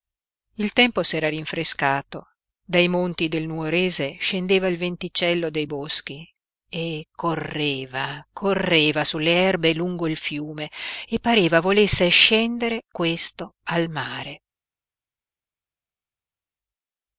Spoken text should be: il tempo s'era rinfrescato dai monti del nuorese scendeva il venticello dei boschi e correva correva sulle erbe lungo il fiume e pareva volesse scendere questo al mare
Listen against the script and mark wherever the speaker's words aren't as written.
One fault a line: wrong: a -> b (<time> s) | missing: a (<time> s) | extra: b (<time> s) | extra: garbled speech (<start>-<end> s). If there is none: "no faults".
no faults